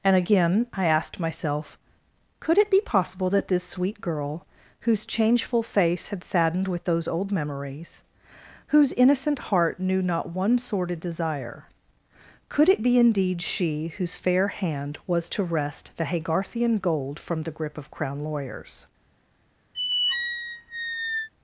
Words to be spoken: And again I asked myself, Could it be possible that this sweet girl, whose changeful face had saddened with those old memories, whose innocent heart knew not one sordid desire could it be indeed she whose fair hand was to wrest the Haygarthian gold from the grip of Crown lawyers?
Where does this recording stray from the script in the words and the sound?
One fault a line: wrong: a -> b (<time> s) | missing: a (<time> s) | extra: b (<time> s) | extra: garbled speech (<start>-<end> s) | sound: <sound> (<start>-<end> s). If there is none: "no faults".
sound: squeak (19.7-21.3 s)